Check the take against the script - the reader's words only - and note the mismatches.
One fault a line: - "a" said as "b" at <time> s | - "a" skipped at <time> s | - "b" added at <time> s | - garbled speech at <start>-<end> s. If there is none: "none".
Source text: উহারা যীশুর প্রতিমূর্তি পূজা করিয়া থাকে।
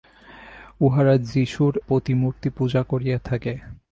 none